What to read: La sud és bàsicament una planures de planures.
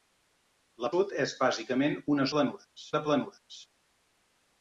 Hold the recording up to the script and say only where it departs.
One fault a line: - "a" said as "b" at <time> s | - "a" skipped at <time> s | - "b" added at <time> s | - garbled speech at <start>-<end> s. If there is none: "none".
none